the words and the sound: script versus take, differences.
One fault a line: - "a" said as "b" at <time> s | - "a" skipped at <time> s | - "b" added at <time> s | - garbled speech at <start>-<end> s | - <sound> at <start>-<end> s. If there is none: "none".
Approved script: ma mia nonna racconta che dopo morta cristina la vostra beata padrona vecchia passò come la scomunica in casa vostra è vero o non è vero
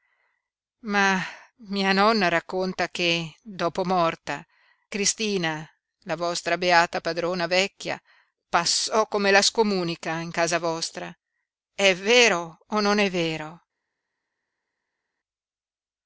none